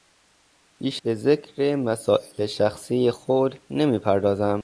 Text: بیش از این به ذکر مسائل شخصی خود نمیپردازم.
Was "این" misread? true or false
true